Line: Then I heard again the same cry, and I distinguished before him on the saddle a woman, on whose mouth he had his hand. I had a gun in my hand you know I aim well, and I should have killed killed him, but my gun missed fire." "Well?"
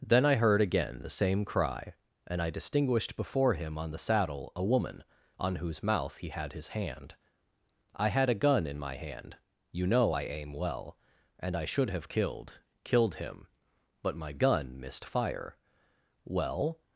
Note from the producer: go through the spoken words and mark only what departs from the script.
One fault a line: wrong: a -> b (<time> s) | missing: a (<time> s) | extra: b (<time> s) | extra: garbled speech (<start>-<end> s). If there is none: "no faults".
no faults